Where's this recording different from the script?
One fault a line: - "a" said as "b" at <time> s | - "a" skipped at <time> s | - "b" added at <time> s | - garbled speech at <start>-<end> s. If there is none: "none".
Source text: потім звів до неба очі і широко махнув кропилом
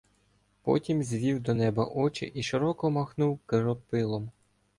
none